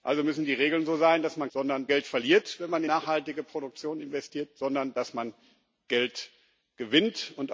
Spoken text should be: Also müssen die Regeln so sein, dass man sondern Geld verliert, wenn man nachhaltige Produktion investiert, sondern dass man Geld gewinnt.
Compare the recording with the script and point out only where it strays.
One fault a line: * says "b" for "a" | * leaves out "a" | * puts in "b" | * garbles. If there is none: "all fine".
all fine